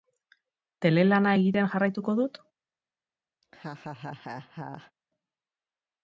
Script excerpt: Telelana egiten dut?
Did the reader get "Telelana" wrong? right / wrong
right